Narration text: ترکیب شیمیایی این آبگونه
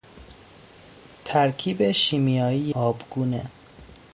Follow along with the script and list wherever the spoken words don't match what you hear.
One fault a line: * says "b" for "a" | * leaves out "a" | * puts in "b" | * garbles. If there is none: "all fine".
* leaves out "این"